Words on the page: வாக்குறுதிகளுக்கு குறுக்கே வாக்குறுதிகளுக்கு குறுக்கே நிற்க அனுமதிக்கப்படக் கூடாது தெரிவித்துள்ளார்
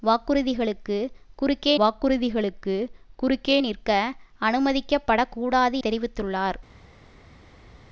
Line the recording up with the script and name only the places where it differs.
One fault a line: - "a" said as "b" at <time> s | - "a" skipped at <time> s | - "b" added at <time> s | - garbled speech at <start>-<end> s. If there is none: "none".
none